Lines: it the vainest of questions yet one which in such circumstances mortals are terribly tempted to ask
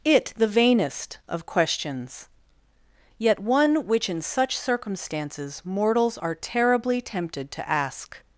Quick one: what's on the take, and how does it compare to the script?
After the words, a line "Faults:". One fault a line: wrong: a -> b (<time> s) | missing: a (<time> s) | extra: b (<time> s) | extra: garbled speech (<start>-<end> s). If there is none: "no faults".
it the vainest of questions yet one which in such circumstances mortals are terribly tempted to ask
Faults:
no faults